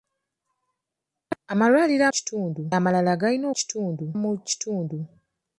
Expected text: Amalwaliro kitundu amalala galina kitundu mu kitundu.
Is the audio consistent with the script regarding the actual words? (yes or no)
yes